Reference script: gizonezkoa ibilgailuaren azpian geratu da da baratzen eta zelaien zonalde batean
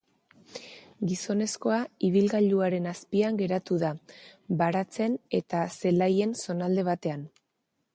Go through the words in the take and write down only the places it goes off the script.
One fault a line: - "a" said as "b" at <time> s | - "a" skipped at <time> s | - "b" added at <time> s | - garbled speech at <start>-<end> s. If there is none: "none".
- "da" skipped at 4.0 s